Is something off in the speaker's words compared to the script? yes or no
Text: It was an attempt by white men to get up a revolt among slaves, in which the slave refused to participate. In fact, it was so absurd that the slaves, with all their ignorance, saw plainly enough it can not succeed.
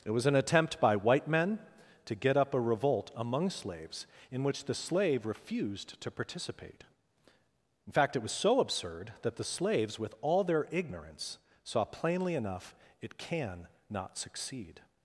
no